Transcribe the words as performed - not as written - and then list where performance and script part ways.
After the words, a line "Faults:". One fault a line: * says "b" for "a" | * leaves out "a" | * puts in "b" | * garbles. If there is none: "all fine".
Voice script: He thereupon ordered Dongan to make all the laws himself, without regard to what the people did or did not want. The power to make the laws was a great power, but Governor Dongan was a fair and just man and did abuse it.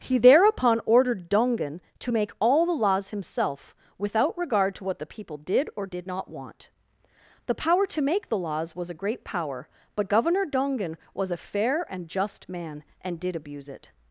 He thereupon ordered Dongan to make all the laws himself, without regard to what the people did or did not want. The power to make the laws was a great power, but Governor Dongan was a fair and just man and did abuse it.
Faults:
all fine